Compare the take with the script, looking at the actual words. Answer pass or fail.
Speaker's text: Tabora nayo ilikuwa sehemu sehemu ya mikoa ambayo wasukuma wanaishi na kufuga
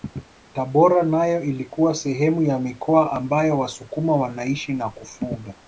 fail